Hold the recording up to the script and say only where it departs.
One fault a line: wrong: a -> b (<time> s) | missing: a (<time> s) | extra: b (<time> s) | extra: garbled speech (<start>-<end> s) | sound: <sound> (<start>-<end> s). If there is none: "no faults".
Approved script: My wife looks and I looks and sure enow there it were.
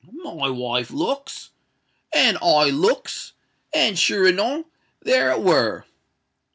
no faults